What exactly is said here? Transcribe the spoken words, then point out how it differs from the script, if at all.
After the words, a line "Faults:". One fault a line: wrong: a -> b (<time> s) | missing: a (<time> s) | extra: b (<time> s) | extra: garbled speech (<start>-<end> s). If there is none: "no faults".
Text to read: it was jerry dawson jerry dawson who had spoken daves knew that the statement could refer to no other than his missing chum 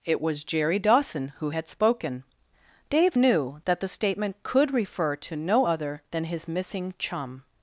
it was jerry dawson who had spoken dave knew that the statement could refer to no other than his missing chum
Faults:
missing: jerry dawson (1.3 s)
wrong: daves -> dave (2.9 s)